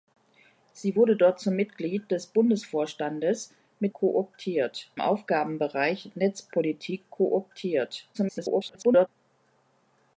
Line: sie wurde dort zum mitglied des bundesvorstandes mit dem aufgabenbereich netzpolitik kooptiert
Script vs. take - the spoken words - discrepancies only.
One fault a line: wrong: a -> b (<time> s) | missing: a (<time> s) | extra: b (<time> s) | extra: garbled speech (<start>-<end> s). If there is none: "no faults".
wrong: dem -> kooptiert (3.9 s)
extra: garbled speech (8.1-9.1 s)